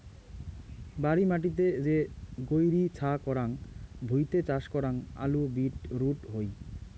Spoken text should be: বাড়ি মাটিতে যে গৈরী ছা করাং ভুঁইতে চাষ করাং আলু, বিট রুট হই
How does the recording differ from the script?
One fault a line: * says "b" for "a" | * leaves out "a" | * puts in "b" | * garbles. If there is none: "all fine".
all fine